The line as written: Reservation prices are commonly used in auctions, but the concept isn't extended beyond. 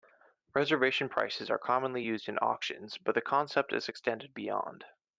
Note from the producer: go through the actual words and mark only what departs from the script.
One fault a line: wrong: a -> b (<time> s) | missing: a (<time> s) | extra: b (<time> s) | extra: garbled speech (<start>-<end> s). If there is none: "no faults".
wrong: isn't -> is (3.7 s)